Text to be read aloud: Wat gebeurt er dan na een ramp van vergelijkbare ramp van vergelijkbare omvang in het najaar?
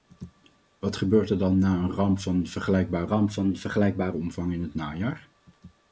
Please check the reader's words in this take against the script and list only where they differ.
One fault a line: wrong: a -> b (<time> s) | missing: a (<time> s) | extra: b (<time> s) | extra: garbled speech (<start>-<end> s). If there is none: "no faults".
no faults